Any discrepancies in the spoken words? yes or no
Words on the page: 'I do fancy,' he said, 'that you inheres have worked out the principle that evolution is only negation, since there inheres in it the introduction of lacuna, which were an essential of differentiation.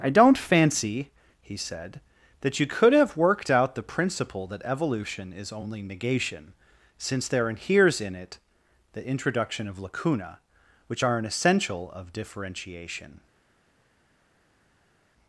yes